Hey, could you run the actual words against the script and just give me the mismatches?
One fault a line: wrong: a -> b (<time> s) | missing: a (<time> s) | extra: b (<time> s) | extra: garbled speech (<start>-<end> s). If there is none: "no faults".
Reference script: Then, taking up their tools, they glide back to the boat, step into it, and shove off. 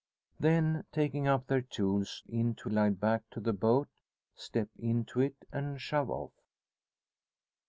wrong: they -> into (2.2 s)